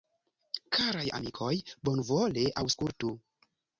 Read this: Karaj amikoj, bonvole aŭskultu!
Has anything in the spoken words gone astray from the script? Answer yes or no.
no